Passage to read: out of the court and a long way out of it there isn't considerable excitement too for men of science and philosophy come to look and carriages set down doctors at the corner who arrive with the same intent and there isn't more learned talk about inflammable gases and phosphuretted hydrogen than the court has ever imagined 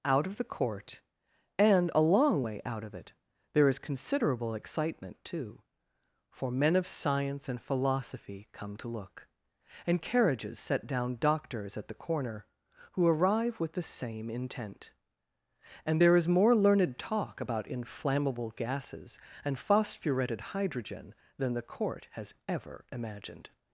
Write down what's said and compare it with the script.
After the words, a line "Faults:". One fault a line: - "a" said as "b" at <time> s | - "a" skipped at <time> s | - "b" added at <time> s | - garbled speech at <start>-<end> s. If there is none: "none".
out of the court and a long way out of it there is considerable excitement too for men of science and philosophy come to look and carriages set down doctors at the corner who arrive with the same intent and there is more learned talk about inflammable gases and phosphuretted hydrogen than the court has ever imagined
Faults:
- "isn't" said as "is" at 3.7 s
- "isn't" said as "is" at 16.2 s